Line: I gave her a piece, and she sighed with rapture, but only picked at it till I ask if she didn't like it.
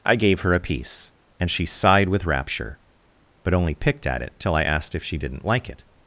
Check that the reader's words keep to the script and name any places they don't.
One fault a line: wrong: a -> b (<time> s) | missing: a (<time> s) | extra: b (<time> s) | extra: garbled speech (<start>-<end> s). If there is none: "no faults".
wrong: ask -> asked (4.6 s)